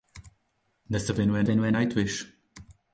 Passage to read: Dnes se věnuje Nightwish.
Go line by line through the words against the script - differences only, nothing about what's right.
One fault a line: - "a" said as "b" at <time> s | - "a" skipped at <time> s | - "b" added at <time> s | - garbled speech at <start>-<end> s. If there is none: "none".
- "věnuje" added at 1.4 s